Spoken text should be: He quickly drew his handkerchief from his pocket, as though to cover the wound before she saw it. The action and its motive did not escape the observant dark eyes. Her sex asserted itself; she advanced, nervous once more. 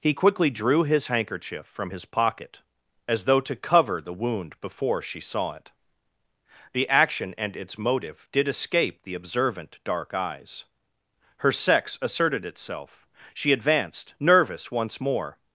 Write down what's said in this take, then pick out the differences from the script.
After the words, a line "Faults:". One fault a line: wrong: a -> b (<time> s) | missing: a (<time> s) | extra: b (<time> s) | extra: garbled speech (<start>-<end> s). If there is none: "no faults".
He quickly drew his handkerchief from his pocket, as though to cover the wound before she saw it. The action and its motive did escape the observant dark eyes. Her sex asserted itself; she advanced, nervous once more.
Faults:
missing: not (8.5 s)